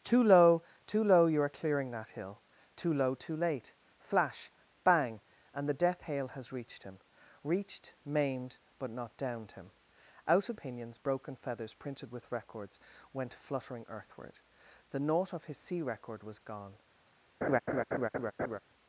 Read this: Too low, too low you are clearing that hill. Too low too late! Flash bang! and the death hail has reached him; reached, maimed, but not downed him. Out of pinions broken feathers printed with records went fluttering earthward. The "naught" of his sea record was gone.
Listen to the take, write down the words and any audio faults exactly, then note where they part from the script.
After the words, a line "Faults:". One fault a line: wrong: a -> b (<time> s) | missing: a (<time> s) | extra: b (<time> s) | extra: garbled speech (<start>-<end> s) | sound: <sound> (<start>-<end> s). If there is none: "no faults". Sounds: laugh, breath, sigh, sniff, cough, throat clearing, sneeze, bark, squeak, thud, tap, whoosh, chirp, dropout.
Too low, too low you are clearing that hill. Too low too late! Flash bang! and the death hail has reached him; reached, maimed, but not downed him. Out of pinions broken feathers printed with records went fluttering earthward. The "naught" of his sea record was gone.
Faults:
sound: laugh (17.4-18.6 s)